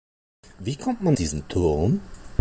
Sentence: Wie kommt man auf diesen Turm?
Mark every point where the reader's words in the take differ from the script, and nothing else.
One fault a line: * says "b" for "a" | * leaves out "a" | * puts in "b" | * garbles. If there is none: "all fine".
* leaves out "auf"